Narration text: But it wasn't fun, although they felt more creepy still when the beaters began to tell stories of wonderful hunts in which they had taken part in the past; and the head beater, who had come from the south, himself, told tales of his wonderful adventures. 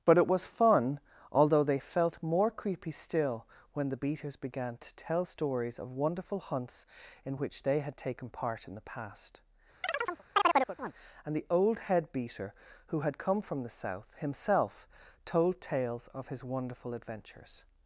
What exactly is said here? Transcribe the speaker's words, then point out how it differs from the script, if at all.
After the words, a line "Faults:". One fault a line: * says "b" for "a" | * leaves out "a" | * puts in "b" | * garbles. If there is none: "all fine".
But it was fun, although they felt more creepy still when the beaters began to tell stories of wonderful hunts in which they had taken part in the past; and the old head beater, who had come from the south, himself, told tales of his wonderful adventures.
Faults:
* says "was" for "wasn't"
* puts in "old"